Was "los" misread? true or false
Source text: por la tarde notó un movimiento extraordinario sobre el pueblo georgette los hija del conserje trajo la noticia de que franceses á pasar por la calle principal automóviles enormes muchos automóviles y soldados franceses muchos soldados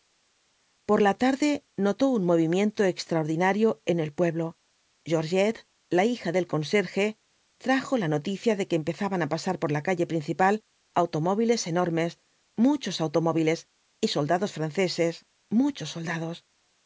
true